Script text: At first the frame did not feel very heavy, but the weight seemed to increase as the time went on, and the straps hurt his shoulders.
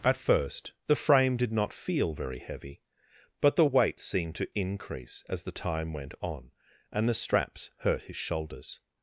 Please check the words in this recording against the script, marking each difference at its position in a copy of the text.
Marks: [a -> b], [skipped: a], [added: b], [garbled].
At first the frame did not feel very heavy, but the weight seemed to increase as the time went on, and the straps hurt his shoulders.